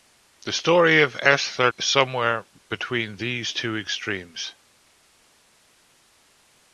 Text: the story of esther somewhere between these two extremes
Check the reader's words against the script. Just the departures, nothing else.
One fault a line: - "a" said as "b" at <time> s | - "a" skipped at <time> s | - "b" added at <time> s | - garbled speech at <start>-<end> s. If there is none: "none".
none